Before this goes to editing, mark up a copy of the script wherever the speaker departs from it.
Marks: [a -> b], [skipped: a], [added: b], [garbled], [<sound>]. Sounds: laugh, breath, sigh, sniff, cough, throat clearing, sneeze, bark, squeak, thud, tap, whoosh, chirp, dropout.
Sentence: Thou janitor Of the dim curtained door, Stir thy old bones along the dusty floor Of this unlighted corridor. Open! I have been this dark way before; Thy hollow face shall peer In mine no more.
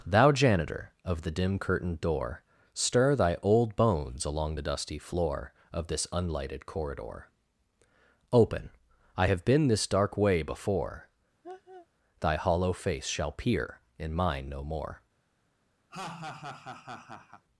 Thou janitor Of the dim curtained door, Stir thy old bones along the dusty floor Of this unlighted corridor. Open! I have been this dark way before; [laugh] Thy hollow face shall peer In mine no more. [laugh]